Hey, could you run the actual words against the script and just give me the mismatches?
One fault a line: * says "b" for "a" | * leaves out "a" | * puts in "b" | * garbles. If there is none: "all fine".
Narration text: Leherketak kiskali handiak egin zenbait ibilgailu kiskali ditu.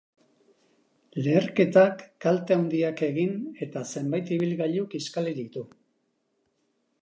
* says "kalte" for "kiskali"
* puts in "eta"